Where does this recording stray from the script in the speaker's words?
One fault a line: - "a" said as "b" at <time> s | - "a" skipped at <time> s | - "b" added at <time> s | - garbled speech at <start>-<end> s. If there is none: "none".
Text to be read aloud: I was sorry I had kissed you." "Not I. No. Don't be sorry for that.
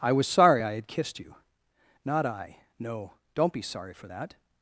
none